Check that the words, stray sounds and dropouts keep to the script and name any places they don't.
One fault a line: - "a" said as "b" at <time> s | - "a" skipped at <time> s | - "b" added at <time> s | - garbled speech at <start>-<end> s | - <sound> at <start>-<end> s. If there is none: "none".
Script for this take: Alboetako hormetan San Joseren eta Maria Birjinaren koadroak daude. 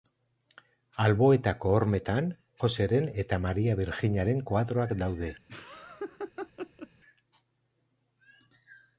- "San" skipped at 2.3 s
- laugh at 5.5-6.9 s